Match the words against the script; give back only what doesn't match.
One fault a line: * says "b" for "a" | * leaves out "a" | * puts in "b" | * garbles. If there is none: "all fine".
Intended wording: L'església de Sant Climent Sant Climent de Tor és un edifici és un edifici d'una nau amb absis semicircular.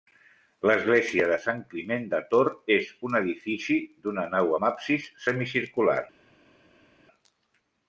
* leaves out "Sant Climent"
* leaves out "és un edifici"